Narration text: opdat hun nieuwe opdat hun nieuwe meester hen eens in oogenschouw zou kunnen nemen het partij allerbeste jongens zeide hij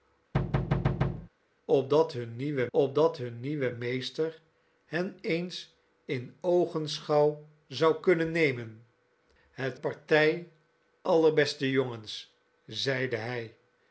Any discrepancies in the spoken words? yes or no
no